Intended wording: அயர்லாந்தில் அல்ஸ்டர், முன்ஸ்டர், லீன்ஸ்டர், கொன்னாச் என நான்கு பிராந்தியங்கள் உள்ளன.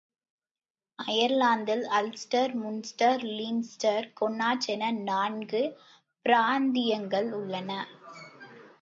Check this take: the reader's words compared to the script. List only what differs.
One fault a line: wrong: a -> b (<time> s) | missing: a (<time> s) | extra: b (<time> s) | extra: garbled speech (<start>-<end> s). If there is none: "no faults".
no faults